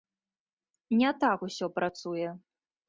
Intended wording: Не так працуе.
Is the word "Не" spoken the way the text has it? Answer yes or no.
yes